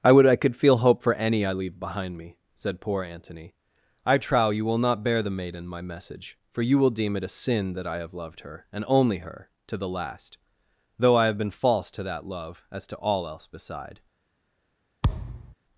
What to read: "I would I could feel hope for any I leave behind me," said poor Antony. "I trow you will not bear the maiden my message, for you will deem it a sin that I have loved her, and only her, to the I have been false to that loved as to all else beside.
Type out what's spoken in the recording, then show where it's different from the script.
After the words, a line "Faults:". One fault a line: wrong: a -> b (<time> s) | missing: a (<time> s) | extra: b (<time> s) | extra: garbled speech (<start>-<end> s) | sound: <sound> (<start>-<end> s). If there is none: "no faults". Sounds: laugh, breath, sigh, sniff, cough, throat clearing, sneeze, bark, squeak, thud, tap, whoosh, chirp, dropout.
"I would I could feel hope for any I leave behind me," said poor Antony. "I trow you will not bear the maiden my message, for you will deem it a sin that I have loved her, and only her, to the last, though I have been false to that love as to all else beside.
Faults:
extra: last though (9.9 s)
wrong: loved -> love (12.2 s)
sound: thud (15.0-15.5 s)